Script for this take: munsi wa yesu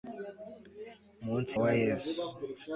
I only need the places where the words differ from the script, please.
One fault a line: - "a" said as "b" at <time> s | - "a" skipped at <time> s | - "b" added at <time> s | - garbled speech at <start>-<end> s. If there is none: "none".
none